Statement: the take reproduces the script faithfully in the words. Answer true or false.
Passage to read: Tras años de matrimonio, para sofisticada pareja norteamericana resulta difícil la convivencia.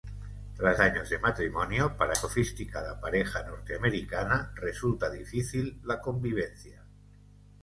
true